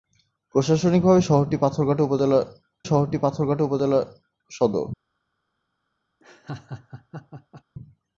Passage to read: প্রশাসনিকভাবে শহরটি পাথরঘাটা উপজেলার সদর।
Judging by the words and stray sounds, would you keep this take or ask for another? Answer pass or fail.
fail